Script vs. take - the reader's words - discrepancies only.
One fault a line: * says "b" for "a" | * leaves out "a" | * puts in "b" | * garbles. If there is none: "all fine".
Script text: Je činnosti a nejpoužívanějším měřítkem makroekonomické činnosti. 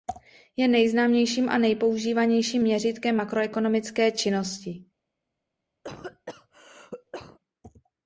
* says "nejznámějším" for "činnosti"